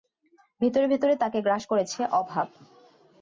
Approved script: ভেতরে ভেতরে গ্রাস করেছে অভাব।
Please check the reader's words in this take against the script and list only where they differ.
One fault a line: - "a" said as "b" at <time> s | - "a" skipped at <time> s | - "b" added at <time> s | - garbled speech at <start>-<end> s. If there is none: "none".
- "তাকে" added at 1.2 s